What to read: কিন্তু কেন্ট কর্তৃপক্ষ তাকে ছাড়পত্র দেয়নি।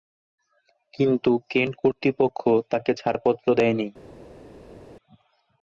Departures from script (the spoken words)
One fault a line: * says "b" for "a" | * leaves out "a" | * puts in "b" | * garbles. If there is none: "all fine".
all fine